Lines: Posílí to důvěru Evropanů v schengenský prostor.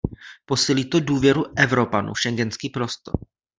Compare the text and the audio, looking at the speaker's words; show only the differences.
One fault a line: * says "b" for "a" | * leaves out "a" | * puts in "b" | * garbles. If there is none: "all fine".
all fine